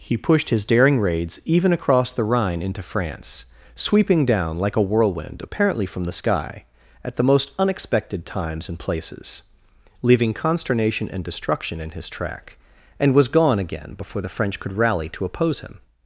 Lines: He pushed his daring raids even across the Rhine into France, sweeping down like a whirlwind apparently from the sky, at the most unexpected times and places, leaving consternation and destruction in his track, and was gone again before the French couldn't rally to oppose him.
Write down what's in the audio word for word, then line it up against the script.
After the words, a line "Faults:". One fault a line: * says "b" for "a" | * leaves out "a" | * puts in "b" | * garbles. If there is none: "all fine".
He pushed his daring raids even across the Rhine into France, sweeping down like a whirlwind apparently from the sky, at the most unexpected times and places, leaving consternation and destruction in his track, and was gone again before the French could rally to oppose him.
Faults:
* says "could" for "couldn't"